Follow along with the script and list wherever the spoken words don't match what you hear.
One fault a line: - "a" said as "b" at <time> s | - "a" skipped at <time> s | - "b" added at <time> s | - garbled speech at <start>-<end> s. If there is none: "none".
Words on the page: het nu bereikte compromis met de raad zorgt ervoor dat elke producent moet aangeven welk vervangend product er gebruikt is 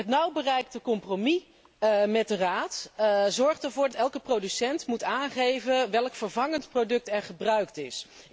- "dat" skipped at 3.9 s